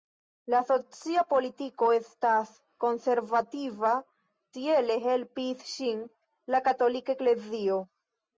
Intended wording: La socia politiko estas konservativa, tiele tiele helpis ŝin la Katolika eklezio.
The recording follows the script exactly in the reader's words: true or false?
false